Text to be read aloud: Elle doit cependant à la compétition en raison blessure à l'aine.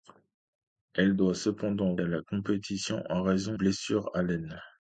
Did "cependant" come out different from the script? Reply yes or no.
no